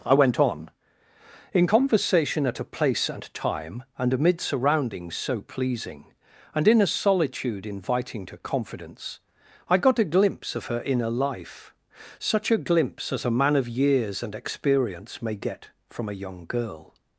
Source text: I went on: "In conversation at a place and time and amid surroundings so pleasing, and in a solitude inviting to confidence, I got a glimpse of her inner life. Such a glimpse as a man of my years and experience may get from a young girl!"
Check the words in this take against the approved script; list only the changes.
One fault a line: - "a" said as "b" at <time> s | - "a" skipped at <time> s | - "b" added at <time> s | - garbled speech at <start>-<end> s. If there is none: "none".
- "my" skipped at 13.7 s